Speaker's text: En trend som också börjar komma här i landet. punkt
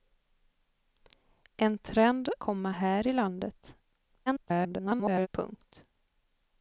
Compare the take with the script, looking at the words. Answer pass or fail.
fail